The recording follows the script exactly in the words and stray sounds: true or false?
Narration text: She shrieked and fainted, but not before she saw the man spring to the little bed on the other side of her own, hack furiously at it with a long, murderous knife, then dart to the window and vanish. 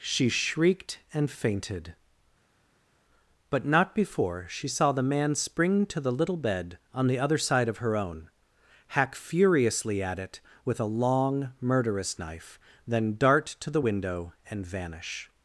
true